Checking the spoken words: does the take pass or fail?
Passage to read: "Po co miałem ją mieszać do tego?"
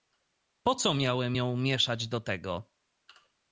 pass